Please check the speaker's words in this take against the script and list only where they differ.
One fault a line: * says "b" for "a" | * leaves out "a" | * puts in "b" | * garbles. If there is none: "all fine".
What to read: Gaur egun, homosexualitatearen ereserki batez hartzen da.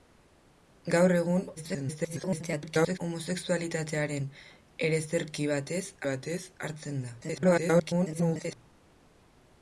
* garbles
* puts in "batez"
* garbles